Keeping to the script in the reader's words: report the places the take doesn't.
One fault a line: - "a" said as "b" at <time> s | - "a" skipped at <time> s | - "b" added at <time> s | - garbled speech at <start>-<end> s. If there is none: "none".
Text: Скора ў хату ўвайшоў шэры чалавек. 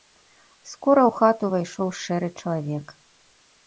none